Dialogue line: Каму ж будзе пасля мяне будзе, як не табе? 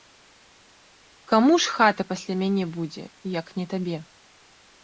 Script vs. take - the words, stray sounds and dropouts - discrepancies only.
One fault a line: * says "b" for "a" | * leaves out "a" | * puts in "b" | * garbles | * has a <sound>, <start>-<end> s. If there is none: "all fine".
* says "хата" for "будзе"